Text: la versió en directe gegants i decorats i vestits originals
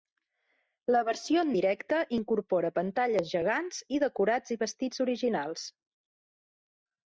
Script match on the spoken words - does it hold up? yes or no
no